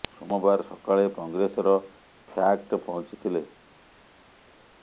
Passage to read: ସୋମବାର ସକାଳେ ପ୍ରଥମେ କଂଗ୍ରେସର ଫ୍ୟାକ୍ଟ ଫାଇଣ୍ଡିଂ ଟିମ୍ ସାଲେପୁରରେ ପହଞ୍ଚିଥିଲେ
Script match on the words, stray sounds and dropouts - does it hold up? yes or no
no